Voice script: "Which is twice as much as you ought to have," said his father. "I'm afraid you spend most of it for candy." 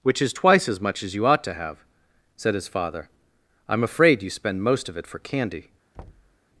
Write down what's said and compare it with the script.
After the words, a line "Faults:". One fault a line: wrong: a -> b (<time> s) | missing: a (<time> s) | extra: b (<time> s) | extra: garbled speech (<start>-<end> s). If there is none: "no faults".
"Which is twice as much as you ought to have," said his father. "I'm afraid you spend most of it for candy."
Faults:
no faults